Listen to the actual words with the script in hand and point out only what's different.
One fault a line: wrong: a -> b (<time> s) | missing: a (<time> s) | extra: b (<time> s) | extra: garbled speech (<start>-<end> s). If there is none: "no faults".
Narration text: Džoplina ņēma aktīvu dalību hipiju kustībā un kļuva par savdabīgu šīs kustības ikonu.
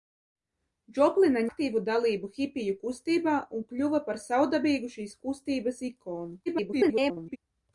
missing: ņēma (1.4 s)
extra: garbled speech (6.5-7.4 s)